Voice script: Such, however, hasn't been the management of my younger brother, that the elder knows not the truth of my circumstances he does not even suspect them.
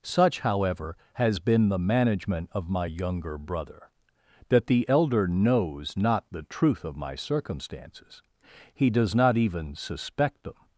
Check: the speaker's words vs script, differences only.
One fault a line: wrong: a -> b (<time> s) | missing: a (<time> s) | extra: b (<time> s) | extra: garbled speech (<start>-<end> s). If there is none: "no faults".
wrong: hasn't -> has (1.1 s)